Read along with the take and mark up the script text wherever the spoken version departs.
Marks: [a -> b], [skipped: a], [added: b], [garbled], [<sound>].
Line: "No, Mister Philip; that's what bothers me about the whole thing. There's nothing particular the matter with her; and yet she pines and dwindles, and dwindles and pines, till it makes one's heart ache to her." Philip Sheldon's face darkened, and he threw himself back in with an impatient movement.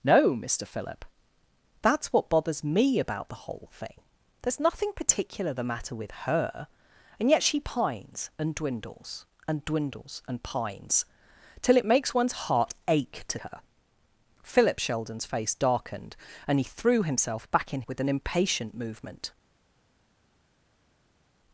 "No, Mister Philip; that's what bothers me about the whole thing. There's nothing particular the matter with her; and yet she pines and dwindles, and dwindles and pines, till it makes one's heart ache to her." Philip Sheldon's face darkened, and he threw himself back in with an impatient movement.